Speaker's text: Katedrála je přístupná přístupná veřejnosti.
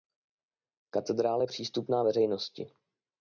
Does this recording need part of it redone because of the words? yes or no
yes